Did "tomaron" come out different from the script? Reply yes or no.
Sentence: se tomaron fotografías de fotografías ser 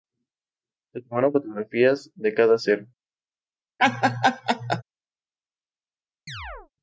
no